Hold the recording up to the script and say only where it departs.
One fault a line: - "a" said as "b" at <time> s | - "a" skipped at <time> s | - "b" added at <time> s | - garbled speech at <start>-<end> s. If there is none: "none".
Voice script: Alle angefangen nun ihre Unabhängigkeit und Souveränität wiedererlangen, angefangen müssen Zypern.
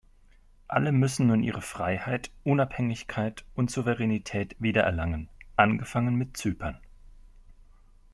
- "angefangen" said as "müssen" at 0.9 s
- "Freiheit" added at 1.6 s
- "müssen" said as "mit" at 6.2 s